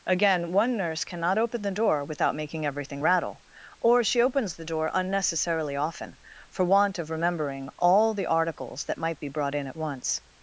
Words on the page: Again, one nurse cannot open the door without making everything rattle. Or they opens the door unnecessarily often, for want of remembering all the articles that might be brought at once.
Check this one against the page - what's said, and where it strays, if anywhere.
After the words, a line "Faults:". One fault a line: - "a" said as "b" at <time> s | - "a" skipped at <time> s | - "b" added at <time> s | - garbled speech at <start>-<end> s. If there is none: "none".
Again, one nurse cannot open the door without making everything rattle. Or she opens the door unnecessarily often, for want of remembering all the articles that might be brought in at once.
Faults:
- "they" said as "she" at 4.0 s
- "in" added at 9.5 s